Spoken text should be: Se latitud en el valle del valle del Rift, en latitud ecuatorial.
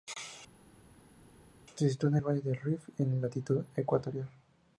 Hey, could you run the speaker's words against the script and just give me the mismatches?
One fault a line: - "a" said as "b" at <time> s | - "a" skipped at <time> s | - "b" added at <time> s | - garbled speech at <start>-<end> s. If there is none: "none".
- "latitud" said as "sitúa" at 1.9 s
- "valle del" skipped at 2.6 s